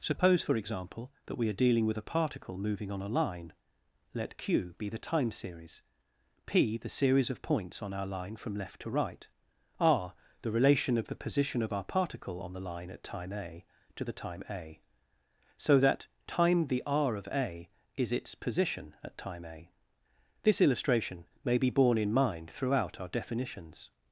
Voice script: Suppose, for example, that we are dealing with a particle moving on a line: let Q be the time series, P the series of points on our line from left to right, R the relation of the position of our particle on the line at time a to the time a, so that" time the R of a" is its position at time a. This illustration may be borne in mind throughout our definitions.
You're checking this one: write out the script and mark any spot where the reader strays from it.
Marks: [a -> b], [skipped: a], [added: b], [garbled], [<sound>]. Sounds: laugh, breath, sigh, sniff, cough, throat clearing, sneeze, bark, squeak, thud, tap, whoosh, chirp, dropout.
Suppose, for example, that we are dealing with a particle moving on a line: let Q be the time series, P the series of points on our line from left to right, R the relation of the position of our particle on the line at time a to the time a, so that" time the R of a" is its position at time a. This illustration may be borne in mind throughout our definitions.